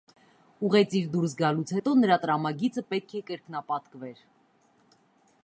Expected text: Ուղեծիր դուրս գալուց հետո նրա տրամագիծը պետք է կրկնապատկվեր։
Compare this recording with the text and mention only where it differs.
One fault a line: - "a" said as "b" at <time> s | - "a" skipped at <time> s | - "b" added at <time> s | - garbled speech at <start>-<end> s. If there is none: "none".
none